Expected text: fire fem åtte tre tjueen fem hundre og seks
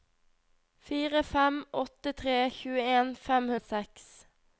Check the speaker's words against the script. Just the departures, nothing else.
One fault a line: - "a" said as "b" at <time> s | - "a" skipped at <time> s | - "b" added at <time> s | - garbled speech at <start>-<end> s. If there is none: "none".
- "hundre" skipped at 3.5 s